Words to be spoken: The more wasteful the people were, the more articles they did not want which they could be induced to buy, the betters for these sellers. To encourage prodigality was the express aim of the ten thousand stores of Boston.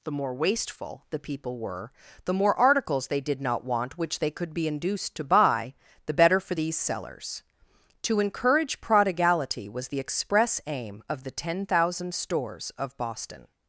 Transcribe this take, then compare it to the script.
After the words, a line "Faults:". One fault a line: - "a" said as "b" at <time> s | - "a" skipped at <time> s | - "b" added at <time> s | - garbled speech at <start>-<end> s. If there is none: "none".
The more wasteful the people were, the more articles they did not want which they could be induced to buy, the better for these sellers. To encourage prodigality was the express aim of the ten thousand stores of Boston.
Faults:
- "betters" said as "better" at 6.1 s